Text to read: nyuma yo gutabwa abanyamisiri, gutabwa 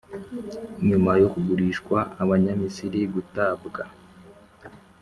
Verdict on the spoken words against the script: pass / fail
fail